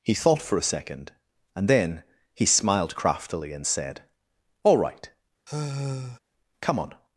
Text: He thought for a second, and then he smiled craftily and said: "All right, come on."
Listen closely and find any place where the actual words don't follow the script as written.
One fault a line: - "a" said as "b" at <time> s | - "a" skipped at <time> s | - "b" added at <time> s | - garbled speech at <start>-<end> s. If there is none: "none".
none